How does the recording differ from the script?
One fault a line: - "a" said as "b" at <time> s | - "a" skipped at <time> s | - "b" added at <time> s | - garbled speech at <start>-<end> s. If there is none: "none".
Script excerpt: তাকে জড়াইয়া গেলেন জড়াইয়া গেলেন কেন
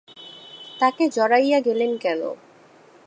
- "জড়াইয়া গেলেন" skipped at 1.9 s